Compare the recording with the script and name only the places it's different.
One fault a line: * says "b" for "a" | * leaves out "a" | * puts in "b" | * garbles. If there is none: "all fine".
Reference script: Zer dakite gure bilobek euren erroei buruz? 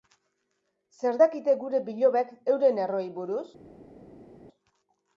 all fine